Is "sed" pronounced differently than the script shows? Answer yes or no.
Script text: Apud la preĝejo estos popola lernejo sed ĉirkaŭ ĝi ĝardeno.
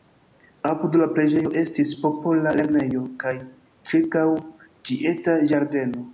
yes